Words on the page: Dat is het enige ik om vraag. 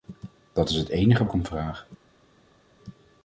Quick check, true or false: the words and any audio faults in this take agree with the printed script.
true